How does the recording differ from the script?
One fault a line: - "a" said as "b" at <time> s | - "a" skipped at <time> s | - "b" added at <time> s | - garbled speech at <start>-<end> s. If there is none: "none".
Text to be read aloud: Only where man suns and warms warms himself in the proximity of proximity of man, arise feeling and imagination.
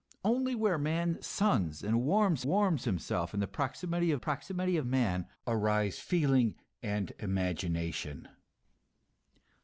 none